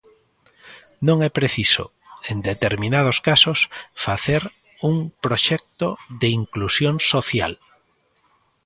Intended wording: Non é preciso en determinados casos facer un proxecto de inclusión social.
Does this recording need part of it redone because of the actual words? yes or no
no